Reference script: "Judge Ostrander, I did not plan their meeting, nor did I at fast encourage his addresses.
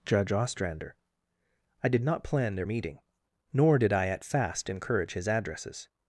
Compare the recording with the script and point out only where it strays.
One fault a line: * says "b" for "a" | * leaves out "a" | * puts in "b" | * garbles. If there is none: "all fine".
all fine